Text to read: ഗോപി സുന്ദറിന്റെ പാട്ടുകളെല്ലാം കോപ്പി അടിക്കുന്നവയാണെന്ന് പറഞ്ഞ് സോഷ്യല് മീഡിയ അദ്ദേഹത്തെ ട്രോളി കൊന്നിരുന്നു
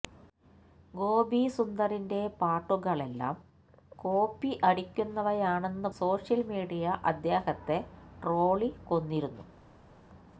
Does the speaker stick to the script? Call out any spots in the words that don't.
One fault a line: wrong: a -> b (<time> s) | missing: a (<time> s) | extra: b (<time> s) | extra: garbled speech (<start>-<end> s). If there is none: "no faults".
missing: പറഞ്ഞ് (5.9 s)